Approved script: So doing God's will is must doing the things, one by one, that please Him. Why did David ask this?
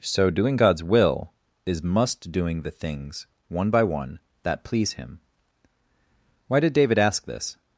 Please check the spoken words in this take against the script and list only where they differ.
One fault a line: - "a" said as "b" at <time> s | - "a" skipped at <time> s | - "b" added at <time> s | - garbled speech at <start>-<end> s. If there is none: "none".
none